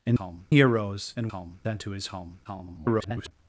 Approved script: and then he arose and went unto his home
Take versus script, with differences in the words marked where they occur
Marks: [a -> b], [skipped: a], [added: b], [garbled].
and [then -> home] he arose and [went -> home] unto his home [garbled]